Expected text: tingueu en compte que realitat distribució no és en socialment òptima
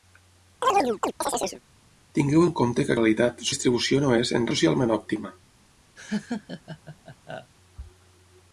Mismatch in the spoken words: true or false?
false